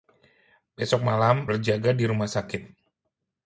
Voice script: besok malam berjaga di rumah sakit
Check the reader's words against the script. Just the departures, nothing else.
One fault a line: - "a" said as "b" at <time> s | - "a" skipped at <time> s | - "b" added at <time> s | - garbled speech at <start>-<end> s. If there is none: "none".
none